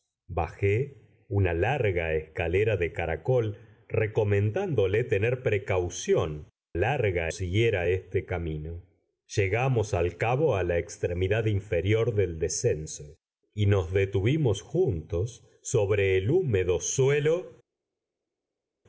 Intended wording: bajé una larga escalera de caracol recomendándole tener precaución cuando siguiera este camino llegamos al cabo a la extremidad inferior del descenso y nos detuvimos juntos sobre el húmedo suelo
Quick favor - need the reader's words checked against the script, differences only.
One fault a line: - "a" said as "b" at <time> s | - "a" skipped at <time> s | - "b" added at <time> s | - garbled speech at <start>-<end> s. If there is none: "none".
- "cuando" said as "larga" at 6.7 s